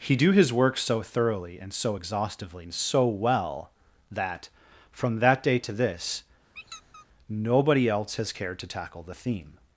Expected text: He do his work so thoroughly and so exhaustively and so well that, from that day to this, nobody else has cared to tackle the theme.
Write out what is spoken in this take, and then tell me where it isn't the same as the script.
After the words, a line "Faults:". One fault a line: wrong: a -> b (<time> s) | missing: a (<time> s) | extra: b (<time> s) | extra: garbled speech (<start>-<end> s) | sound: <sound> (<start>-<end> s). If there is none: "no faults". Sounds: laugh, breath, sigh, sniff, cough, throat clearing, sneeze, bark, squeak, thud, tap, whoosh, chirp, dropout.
He do his work so thoroughly and so exhaustively and so well that, from that day to this, nobody else has cared to tackle the theme.
Faults:
sound: squeak (6.5-7.1 s)